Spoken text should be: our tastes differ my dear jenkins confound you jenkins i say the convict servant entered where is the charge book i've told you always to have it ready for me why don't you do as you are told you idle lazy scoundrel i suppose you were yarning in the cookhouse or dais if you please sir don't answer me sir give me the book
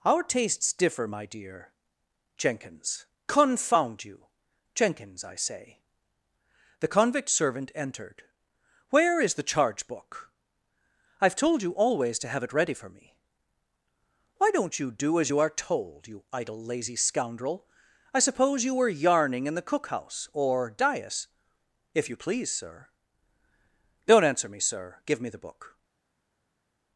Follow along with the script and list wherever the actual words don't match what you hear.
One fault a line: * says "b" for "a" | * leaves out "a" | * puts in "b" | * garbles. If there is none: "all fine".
all fine